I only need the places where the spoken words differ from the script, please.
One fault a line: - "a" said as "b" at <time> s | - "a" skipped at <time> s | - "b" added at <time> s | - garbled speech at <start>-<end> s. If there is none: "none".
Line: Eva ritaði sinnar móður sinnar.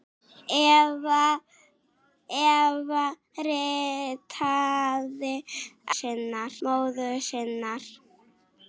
none